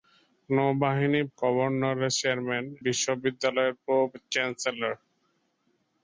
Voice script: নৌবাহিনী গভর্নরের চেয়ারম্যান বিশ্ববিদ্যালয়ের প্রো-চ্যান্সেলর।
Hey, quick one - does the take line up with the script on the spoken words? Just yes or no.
yes